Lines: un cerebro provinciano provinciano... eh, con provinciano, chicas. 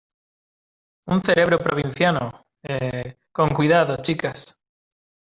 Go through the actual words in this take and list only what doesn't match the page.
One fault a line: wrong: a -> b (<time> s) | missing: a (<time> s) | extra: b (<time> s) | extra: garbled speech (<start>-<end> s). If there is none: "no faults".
missing: provinciano (2.5 s)
wrong: provinciano -> cuidado (3.5 s)